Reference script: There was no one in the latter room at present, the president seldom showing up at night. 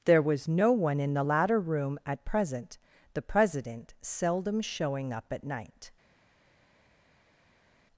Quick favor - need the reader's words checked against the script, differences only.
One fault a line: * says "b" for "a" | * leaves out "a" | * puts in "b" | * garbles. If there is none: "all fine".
all fine